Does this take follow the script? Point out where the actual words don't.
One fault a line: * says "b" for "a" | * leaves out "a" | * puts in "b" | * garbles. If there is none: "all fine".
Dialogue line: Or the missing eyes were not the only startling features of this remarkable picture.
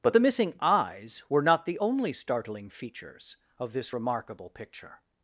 * says "But" for "Or"